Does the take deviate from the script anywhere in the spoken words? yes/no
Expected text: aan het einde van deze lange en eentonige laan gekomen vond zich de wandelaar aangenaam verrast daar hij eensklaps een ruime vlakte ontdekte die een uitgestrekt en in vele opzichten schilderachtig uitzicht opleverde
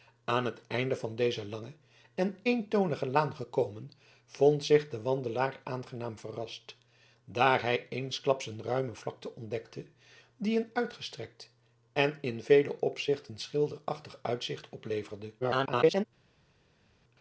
yes